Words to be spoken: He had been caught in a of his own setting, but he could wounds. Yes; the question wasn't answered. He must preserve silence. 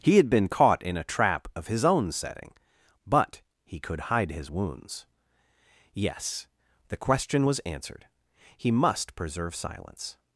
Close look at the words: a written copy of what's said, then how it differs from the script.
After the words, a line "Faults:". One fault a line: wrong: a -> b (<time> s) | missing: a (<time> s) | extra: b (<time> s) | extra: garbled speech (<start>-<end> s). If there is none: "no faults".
He had been caught in a trap of his own setting, but he could hide his wounds. Yes; the question was answered. He must preserve silence.
Faults:
extra: trap (1.0 s)
extra: hide his (4.1 s)
wrong: wasn't -> was (7.4 s)